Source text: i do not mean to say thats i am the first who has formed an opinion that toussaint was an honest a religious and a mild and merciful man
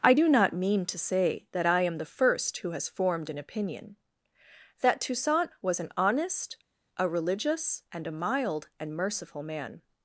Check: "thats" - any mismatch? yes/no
yes